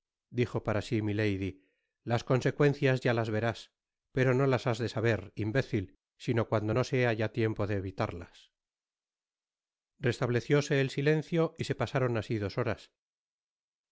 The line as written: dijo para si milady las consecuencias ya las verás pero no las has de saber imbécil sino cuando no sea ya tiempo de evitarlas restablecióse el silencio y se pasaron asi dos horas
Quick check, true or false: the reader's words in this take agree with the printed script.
true